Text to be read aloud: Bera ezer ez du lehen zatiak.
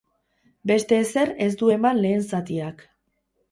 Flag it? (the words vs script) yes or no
yes